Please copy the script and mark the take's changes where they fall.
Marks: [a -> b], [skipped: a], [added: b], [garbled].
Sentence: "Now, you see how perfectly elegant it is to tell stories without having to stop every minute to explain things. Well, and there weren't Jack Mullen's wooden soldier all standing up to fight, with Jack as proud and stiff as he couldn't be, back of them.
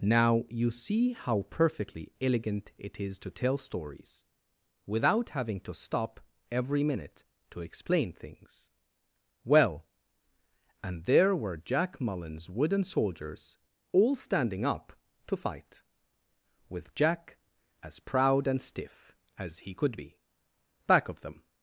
"Now, you see how perfectly elegant it is to tell stories without having to stop every minute to explain things. Well, and there [weren't -> were] Jack Mullen's wooden [soldier -> soldiers] all standing up to fight, with Jack as proud and stiff as he [couldn't -> could] be, back of them.